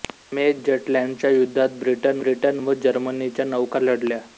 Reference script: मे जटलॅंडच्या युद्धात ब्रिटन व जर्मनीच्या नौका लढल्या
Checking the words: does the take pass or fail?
fail